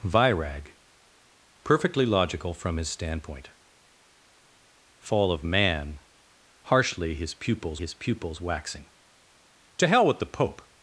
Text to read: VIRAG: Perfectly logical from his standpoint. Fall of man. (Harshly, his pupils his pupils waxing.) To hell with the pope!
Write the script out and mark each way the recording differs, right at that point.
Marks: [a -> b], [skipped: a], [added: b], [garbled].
VIRAG: Perfectly logical from his standpoint. Fall of man. (Harshly, his pupils his pupils waxing.) To hell with the pope!